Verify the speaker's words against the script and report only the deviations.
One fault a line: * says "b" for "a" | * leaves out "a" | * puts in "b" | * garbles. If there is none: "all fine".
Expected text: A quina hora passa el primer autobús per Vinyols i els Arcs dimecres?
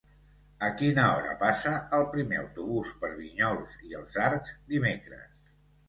all fine